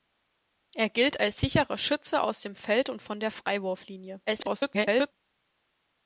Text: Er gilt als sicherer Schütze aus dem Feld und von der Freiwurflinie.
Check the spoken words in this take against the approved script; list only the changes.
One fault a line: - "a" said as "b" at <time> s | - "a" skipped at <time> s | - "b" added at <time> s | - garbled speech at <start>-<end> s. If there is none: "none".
- garbled speech at 4.3-5.1 s